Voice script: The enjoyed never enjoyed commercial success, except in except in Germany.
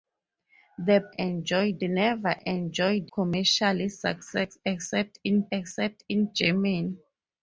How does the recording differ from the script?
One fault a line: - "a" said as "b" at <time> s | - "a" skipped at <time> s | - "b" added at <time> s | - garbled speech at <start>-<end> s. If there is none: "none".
none